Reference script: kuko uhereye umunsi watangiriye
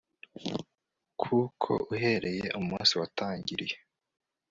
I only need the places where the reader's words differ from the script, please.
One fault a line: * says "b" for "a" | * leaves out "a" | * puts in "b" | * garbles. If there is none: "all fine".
all fine